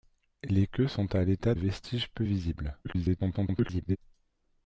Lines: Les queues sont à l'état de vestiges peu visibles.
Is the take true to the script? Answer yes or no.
no